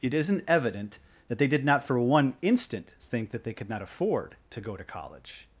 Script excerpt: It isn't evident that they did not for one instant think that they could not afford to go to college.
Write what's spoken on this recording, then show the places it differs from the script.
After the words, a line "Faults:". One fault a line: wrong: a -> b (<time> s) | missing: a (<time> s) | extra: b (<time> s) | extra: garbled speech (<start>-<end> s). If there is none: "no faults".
It isn't evident that they did not for one instant think that they could not afford to go to college.
Faults:
no faults